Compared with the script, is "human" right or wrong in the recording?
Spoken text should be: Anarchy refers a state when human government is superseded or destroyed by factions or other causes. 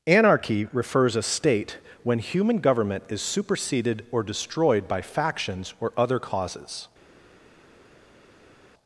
right